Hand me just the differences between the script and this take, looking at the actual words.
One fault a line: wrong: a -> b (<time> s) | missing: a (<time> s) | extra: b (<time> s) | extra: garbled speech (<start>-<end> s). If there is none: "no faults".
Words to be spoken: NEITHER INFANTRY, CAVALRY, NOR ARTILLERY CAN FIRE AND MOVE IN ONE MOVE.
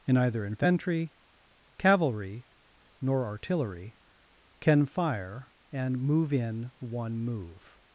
wrong: NEITHER -> In either (0.1 s)